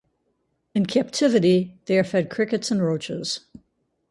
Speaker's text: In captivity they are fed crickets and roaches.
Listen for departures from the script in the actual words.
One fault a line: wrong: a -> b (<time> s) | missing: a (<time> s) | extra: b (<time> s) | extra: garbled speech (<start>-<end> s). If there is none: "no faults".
no faults